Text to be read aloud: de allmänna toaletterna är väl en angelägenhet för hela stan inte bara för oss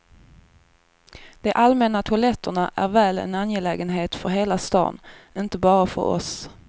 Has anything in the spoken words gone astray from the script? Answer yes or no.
no